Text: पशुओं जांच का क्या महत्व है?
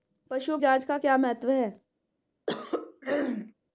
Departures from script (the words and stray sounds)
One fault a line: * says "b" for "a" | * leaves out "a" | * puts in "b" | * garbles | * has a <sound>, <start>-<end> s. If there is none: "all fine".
* has a throat clearing, 2.5-3.5 s